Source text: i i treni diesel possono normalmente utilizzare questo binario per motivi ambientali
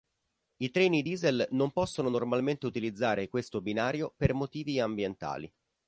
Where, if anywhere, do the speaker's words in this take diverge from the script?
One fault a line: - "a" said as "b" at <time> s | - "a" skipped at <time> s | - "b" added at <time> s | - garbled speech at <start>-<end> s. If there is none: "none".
- "i" skipped at 0.7 s
- "non" added at 1.5 s